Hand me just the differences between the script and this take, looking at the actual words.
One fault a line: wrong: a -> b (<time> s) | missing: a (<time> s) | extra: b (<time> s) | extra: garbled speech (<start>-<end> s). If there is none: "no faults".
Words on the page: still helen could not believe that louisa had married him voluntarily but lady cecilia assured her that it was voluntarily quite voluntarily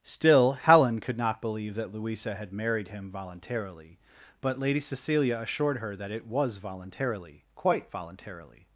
no faults